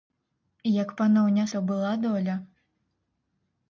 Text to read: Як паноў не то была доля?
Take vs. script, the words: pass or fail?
pass